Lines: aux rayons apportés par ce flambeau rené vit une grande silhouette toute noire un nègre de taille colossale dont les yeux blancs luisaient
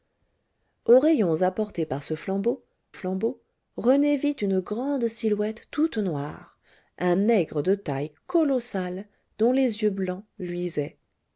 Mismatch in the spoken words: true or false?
true